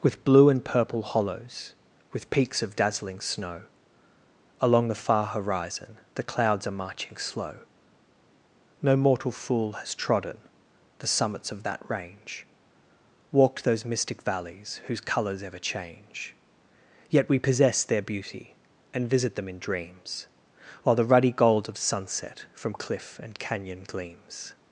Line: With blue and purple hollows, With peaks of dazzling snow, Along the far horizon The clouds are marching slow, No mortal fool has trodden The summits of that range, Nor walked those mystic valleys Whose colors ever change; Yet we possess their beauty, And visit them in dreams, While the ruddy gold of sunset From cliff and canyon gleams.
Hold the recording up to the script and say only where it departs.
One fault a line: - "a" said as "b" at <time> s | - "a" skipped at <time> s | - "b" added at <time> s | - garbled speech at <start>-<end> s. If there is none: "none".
- "Nor" skipped at 12.5 s